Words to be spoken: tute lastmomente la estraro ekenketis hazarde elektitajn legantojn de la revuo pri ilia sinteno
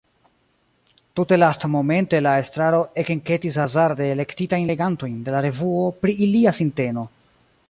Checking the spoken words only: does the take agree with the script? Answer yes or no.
yes